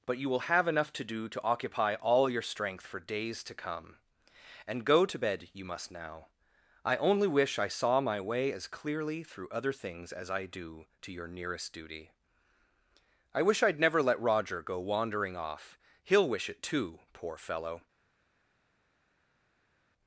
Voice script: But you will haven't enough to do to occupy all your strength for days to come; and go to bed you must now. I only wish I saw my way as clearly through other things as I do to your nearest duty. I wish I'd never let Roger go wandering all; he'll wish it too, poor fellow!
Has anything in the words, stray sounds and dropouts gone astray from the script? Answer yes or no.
yes